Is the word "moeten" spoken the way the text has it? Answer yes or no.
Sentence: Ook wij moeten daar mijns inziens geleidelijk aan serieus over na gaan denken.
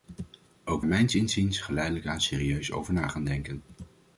no